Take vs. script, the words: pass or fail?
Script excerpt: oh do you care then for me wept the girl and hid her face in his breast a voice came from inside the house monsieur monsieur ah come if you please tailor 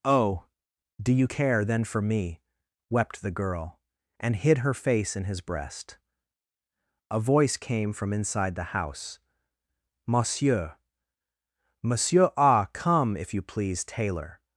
pass